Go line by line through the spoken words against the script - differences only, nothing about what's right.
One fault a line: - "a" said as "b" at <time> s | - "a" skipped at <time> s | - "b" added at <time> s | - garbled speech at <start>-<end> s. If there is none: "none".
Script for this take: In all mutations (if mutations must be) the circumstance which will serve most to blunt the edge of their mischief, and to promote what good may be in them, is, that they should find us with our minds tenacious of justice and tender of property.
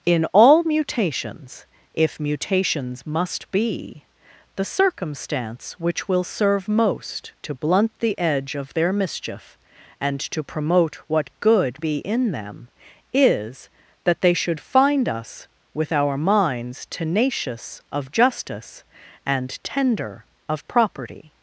- "may" skipped at 11.8 s